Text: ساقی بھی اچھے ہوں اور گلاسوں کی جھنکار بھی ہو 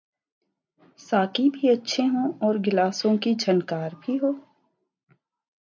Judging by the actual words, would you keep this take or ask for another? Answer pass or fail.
pass